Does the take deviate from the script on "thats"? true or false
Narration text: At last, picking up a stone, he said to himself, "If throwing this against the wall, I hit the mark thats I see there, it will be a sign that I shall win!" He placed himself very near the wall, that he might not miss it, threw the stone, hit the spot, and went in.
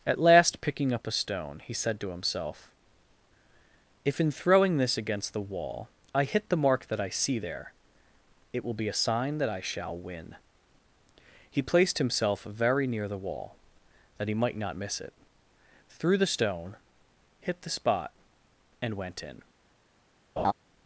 true